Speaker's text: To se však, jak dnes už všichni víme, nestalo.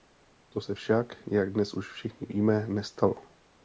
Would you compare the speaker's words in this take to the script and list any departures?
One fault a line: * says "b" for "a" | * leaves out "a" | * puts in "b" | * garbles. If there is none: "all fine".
all fine